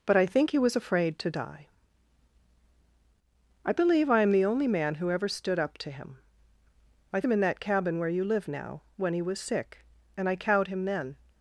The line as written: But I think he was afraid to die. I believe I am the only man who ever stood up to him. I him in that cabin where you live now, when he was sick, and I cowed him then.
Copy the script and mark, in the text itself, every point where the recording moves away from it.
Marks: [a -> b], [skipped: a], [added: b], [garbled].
But I think he was afraid to die. I believe I am the only man who ever stood up to him. I him in that cabin where you live now, when he was sick, and I cowed him then.